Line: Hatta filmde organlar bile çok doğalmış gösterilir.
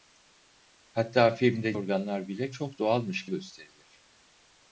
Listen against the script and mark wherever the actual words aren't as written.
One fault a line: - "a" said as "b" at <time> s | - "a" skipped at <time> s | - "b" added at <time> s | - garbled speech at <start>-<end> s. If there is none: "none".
none